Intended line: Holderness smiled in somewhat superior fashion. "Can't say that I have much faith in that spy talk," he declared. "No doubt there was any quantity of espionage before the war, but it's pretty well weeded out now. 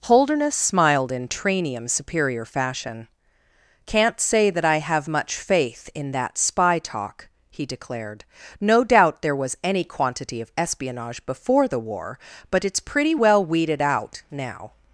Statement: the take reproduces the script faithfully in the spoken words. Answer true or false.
false